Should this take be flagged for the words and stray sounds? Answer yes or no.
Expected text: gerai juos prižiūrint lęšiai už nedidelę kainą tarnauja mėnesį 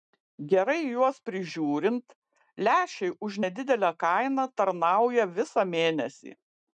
yes